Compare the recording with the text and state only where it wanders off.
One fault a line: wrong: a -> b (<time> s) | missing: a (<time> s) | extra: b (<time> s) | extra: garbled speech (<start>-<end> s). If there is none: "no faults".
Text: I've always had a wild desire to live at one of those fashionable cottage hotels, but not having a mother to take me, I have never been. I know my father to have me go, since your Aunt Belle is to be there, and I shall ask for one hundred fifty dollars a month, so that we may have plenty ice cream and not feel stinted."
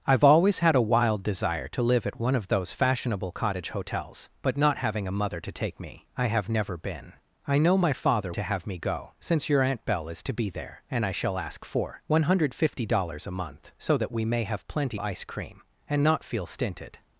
no faults